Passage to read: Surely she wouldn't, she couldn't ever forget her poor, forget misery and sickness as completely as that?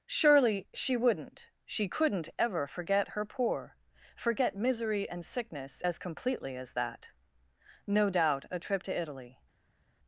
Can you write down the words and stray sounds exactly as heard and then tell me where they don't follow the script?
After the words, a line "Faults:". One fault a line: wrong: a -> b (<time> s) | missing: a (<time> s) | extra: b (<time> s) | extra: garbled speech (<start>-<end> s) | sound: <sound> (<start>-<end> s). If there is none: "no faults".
Surely she wouldn't, she couldn't ever forget her poor, forget misery and sickness as completely as that? No doubt a trip to Italy
Faults:
extra: No doubt a trip to Italy (7.8 s)